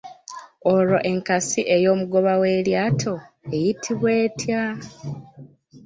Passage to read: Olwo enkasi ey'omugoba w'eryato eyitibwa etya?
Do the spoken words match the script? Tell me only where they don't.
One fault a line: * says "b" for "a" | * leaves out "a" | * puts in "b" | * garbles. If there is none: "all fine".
all fine